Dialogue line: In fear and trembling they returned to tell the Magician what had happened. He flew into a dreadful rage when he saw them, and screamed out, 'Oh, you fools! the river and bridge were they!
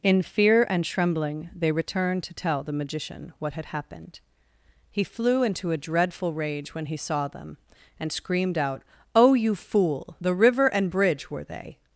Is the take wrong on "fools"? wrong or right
wrong